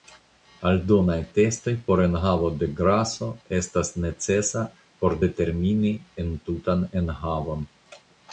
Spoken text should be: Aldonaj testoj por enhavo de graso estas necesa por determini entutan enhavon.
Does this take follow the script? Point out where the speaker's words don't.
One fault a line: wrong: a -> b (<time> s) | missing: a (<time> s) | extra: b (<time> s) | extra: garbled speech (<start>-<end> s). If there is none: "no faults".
no faults